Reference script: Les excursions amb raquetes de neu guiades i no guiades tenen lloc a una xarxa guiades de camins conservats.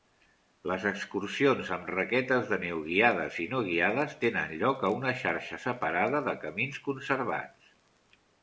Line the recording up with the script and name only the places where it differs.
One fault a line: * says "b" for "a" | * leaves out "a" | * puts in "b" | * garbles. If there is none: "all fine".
* says "separada" for "guiades"